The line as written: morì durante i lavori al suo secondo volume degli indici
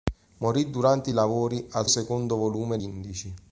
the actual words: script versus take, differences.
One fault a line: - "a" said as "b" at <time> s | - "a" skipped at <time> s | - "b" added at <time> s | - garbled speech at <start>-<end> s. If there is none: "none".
- "suo" skipped at 1.9 s
- "degli" skipped at 2.8 s